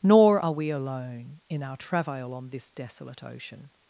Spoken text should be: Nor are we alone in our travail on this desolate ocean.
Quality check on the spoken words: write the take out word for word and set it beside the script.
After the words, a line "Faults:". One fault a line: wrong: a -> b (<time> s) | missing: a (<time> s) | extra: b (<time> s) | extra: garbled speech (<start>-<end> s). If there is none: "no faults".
Nor are we alone in our travail on this desolate ocean.
Faults:
no faults